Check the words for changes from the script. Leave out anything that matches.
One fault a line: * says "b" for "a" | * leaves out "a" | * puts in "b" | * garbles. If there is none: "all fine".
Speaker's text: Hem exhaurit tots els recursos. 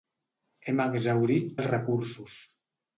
* leaves out "tots"